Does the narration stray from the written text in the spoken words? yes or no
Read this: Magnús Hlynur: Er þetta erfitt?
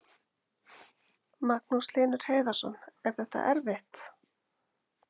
yes